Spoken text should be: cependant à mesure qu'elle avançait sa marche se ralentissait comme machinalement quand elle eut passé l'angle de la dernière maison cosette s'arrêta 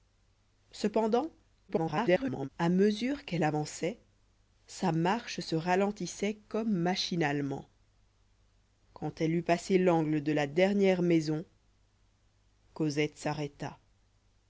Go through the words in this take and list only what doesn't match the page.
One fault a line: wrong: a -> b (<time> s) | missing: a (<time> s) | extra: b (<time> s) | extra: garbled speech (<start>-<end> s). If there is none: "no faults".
extra: garbled speech (1.7-2.5 s)